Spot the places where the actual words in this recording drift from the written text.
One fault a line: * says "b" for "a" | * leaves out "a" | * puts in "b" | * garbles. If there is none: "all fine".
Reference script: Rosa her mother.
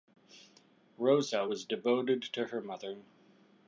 * puts in "was devoted to"